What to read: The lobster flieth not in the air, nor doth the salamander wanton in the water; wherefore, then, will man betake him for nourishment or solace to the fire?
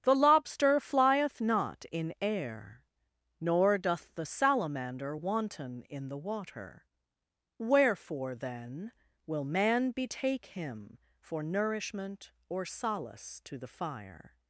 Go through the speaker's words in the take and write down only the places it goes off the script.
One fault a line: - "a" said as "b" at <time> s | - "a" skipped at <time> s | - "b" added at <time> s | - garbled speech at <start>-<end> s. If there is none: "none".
- "the" skipped at 2.1 s